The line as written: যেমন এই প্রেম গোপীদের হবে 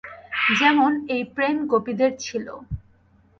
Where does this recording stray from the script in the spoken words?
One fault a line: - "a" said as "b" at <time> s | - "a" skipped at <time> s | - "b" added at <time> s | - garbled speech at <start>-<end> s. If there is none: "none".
- "হবে" said as "ছিল" at 2.2 s